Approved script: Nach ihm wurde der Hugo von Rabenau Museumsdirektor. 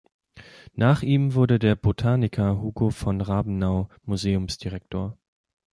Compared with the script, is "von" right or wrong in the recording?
right